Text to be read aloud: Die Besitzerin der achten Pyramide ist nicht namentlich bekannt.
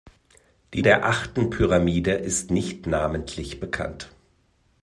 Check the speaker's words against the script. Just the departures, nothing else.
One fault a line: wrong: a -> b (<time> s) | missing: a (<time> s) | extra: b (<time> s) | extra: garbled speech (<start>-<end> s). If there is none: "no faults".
missing: Besitzerin (0.8 s)